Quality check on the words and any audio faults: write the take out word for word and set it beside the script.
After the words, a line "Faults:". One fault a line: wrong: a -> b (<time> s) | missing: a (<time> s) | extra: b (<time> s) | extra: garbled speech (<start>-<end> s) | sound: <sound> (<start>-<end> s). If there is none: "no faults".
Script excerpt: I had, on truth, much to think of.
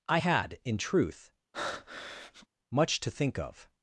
I had, in truth, much to think of.
Faults:
wrong: on -> in (0.6 s)
sound: breath (1.5-2.5 s)